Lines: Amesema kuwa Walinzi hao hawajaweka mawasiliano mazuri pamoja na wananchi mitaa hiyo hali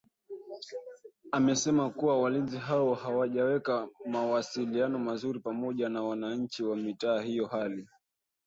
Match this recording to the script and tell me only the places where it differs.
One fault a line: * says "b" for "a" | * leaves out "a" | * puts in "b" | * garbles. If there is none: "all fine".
* puts in "wa"